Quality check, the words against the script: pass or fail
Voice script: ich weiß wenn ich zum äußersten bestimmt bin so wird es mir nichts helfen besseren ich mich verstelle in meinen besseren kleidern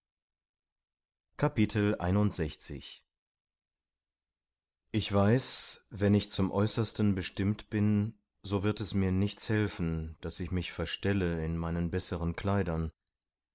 fail